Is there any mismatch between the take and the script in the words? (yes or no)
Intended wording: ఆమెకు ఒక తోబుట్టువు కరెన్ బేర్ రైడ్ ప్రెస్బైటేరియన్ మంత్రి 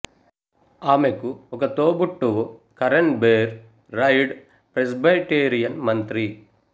no